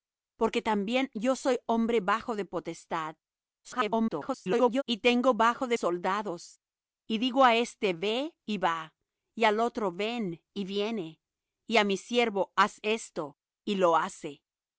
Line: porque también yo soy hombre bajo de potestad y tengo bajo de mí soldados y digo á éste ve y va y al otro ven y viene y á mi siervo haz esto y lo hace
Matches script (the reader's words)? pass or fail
fail